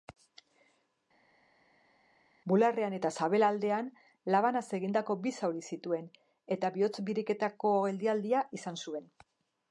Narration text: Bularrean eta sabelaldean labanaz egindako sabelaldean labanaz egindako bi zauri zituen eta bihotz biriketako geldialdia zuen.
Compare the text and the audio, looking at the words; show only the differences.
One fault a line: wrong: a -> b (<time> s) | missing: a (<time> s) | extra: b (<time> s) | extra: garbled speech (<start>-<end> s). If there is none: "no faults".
missing: sabelaldean labanaz egindako (5.2 s)
extra: izan (8.6 s)